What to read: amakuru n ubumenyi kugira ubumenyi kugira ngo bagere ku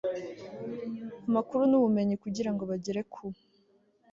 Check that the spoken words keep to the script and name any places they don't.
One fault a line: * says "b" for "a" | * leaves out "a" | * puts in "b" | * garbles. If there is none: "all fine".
* leaves out "ubumenyi kugira"